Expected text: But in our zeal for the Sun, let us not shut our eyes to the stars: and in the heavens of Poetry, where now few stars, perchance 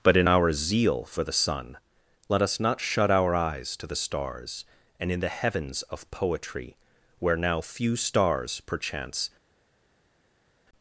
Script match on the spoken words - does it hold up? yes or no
yes